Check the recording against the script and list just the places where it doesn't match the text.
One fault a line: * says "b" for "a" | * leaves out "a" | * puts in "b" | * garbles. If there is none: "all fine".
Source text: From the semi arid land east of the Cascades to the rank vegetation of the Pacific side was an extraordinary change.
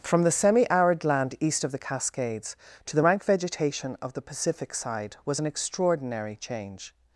all fine